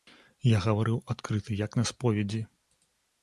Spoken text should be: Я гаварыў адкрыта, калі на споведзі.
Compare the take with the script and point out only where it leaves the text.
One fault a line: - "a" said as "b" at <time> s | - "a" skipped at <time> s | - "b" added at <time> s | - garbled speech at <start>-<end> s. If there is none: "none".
- "калі" said as "як" at 1.6 s